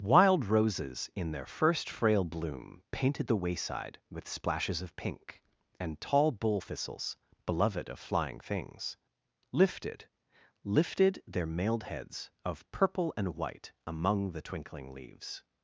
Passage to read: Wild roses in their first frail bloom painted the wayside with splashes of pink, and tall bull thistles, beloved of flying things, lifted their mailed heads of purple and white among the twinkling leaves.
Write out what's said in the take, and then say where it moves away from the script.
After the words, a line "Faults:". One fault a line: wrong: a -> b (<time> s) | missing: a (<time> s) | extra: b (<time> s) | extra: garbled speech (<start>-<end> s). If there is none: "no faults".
Wild roses in their first frail bloom painted the wayside with splashes of pink, and tall bull thistles, beloved of flying things, lifted lifted their mailed heads of purple and white among the twinkling leaves.
Faults:
extra: lifted (10.6 s)